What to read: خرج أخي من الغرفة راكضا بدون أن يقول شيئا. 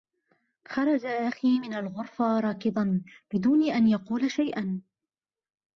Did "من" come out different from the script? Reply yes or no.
no